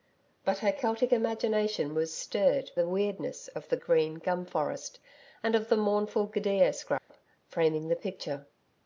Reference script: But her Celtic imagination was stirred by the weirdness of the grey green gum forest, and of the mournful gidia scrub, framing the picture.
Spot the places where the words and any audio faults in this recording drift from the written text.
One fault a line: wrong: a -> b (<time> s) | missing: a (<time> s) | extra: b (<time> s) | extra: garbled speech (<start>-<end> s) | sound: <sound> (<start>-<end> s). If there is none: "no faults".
missing: by (2.7 s)
missing: grey (3.8 s)
sound: dropout (7.0-7.1 s)